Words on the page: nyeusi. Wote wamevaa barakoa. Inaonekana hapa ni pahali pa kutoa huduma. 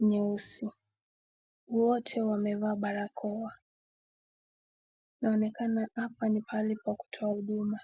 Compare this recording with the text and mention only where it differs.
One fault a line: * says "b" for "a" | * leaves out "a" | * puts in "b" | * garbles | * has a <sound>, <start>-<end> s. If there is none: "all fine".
all fine